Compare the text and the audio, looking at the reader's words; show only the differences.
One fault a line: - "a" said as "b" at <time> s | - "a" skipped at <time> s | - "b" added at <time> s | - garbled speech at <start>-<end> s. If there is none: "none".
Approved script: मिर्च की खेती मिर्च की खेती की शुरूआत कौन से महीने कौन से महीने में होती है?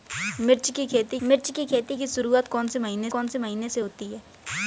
none